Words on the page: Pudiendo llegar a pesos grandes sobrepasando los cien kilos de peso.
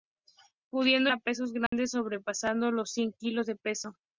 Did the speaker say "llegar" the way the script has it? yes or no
no